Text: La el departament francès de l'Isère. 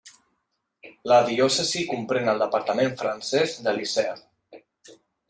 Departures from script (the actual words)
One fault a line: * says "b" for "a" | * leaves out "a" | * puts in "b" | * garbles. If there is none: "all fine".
* puts in "diòcesi comprèn"